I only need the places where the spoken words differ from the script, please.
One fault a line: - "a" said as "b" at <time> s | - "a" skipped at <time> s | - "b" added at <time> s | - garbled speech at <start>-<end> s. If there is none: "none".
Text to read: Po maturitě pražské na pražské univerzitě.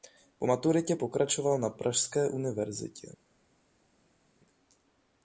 - "pražské" said as "pokračoval" at 0.9 s